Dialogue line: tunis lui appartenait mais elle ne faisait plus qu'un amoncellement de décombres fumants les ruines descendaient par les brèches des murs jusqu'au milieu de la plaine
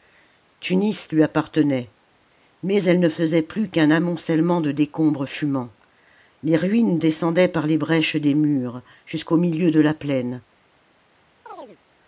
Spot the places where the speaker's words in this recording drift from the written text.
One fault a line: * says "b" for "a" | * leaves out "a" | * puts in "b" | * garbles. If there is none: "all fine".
all fine